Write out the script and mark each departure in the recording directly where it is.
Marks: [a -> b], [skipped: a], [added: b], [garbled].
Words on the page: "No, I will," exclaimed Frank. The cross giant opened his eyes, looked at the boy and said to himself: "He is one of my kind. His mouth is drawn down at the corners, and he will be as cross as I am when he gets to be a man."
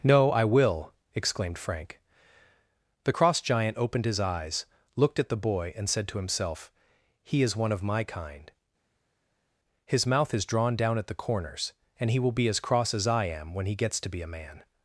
"No, I will," exclaimed Frank. The cross giant opened his eyes, looked at the boy and said to himself: "He is one of my kind. His mouth is drawn down at the corners, and he will be as cross as I am when he gets to be a man."